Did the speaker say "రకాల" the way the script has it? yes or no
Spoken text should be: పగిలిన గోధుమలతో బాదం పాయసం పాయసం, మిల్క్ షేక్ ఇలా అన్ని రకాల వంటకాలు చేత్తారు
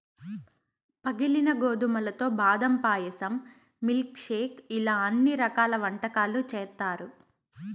yes